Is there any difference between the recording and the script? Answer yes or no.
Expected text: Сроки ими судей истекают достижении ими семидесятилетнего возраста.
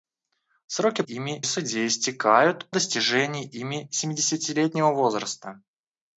no